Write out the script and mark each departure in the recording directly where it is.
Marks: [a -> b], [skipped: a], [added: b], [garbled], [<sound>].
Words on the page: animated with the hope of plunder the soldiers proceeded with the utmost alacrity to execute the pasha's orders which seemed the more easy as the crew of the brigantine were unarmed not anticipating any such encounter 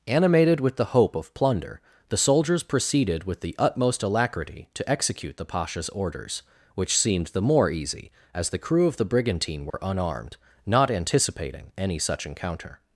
animated with the hope of plunder the soldiers proceeded with the utmost alacrity to execute the pasha's orders which seemed the more easy as the crew of the brigantine were [dropout] unarmed not anticipating any such encounter